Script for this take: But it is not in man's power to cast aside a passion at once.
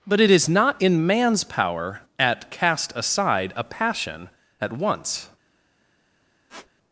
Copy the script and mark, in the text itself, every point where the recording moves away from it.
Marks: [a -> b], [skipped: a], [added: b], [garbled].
But it is not in man's power [to -> at] cast aside a passion at once.